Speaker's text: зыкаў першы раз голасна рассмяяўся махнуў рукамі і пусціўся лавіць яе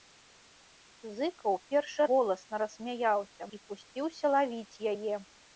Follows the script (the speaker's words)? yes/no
no